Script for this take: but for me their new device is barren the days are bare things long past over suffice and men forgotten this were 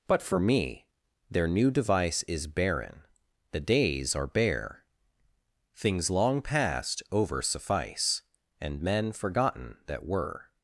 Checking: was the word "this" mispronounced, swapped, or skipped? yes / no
yes